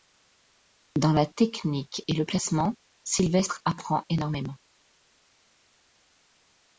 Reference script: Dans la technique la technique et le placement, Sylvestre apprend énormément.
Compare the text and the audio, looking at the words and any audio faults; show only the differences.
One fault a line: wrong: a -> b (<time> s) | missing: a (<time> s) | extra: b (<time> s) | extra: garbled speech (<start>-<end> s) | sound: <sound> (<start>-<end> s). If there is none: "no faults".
missing: la technique (2.0 s)